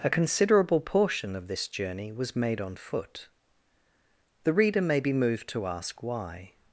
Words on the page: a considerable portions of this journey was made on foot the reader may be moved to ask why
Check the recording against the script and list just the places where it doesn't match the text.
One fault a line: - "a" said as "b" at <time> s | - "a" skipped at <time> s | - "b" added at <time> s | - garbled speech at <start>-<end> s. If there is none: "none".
- "portions" said as "portion" at 0.8 s